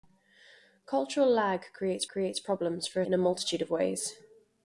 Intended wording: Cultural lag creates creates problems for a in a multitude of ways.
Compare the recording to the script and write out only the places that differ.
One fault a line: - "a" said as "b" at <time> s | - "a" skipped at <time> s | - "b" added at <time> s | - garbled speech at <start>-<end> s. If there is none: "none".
none